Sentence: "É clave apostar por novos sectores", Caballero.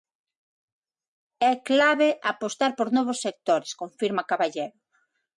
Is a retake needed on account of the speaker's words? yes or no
yes